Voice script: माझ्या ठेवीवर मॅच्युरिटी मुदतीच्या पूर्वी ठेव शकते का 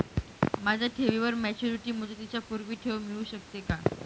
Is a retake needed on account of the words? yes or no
yes